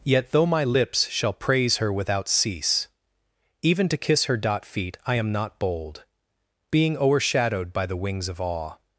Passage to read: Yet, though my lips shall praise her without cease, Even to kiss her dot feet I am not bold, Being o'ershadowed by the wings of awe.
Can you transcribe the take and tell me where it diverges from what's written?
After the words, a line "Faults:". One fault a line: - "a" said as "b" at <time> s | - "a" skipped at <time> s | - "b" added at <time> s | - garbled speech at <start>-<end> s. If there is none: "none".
Yet, though my lips shall praise her without cease, Even to kiss her dot feet I am not bold, Being o'ershadowed by the wings of awe.
Faults:
none